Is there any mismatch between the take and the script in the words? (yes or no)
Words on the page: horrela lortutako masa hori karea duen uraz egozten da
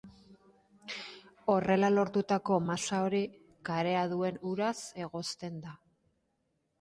no